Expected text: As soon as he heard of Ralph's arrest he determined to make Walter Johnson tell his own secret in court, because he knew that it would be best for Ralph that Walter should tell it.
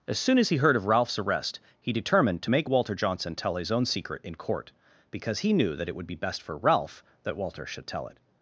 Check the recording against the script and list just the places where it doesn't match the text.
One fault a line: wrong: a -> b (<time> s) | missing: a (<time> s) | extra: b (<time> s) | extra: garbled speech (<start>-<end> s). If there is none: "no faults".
no faults